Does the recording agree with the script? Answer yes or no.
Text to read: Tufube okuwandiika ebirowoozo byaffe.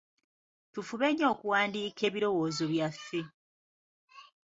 no